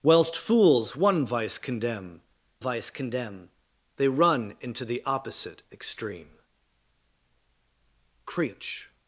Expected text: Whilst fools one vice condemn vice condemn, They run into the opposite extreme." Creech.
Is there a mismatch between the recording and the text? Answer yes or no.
no